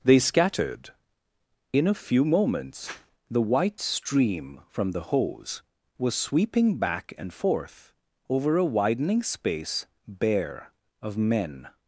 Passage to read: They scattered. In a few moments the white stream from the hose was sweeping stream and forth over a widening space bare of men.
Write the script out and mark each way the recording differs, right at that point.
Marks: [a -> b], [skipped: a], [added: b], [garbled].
They scattered. In a few moments the white stream from the hose was sweeping [stream -> back] and forth over a widening space bare of men.